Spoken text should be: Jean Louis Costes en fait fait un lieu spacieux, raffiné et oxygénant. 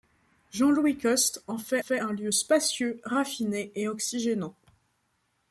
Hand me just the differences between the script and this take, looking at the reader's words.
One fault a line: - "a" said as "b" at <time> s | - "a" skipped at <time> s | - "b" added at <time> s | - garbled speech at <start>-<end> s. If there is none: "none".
none